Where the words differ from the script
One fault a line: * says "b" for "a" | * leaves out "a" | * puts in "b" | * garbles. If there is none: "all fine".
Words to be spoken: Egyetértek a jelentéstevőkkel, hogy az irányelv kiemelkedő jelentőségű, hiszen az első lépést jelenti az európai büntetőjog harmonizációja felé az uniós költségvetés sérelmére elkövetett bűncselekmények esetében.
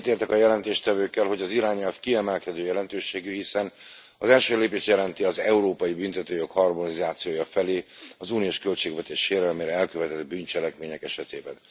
all fine